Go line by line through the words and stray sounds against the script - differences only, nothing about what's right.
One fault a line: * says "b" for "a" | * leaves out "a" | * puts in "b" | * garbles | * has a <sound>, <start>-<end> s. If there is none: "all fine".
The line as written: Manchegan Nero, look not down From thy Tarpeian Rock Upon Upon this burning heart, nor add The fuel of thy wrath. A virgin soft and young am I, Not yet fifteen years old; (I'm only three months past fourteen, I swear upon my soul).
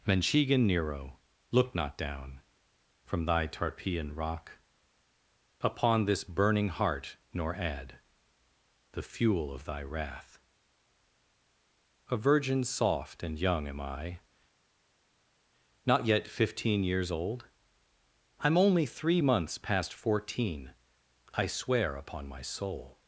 * leaves out "Upon"